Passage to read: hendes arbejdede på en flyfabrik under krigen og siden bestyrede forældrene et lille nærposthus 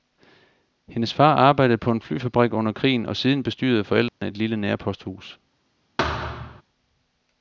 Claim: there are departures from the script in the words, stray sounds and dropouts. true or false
true